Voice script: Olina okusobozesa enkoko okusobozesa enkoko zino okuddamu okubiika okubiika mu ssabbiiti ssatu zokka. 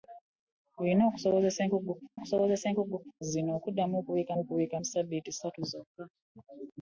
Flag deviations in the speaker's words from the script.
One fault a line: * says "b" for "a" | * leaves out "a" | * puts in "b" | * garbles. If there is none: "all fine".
all fine